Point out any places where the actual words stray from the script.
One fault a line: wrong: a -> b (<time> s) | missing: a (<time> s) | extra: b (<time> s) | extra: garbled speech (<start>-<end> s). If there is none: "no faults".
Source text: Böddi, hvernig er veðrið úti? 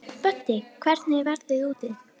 no faults